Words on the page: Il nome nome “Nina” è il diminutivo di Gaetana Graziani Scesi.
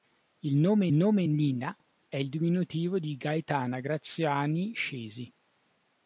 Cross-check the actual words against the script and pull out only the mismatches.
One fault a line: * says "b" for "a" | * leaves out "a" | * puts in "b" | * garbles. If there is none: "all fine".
all fine